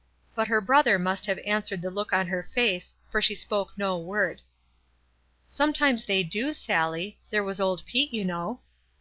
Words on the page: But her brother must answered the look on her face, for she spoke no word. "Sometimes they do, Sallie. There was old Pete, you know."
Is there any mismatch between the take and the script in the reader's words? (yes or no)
yes